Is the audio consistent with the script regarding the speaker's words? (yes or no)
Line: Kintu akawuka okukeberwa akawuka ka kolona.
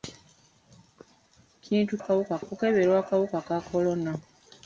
yes